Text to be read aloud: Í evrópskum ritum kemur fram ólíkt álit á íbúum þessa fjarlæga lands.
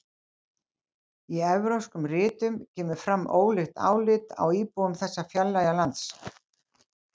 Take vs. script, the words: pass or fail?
pass